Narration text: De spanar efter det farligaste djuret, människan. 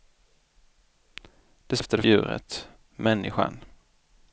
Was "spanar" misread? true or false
true